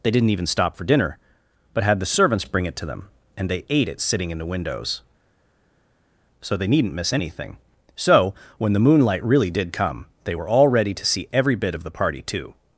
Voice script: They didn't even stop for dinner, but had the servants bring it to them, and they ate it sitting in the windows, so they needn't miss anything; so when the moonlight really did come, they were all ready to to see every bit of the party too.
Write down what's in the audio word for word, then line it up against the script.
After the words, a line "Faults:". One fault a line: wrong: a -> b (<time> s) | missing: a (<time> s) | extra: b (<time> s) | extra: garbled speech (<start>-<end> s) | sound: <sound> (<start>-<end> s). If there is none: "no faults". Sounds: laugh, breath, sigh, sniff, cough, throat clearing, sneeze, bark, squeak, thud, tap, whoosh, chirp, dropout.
They didn't even stop for dinner, but had the servants bring it to them, and they ate it sitting in the windows, so they needn't miss anything; so when the moonlight really did come, they were all ready to see every bit of the party too.
Faults:
missing: to (11.1 s)